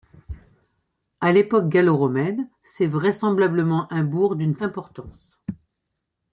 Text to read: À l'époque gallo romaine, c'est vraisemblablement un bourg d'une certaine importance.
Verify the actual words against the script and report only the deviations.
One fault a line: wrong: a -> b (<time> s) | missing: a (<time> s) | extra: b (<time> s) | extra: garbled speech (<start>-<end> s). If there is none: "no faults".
missing: certaine (4.6 s)